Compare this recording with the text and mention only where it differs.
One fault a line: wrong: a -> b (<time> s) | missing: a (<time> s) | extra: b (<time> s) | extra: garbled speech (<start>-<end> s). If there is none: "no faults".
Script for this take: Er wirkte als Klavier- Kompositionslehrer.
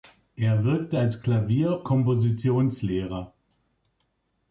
no faults